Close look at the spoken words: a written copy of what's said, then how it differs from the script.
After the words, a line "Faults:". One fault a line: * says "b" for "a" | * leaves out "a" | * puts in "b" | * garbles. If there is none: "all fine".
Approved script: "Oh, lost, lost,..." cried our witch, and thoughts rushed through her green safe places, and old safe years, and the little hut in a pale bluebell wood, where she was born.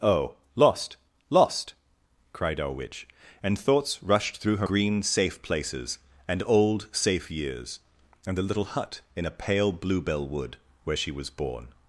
"Oh, lost, lost,..." cried our witch, and thoughts rushed through her green safe places, and old safe years, and the little hut in a pale bluebell wood, where she was born.
Faults:
all fine